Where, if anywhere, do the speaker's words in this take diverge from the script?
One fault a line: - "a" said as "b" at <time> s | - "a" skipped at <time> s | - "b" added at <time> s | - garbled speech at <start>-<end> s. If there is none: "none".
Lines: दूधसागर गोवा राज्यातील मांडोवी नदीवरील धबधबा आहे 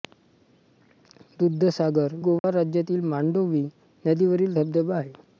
none